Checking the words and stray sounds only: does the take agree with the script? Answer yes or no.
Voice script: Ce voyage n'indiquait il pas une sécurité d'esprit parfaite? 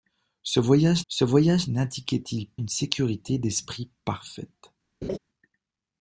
no